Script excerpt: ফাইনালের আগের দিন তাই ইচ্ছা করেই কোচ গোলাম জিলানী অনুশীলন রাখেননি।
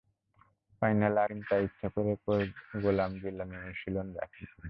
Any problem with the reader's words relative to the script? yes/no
yes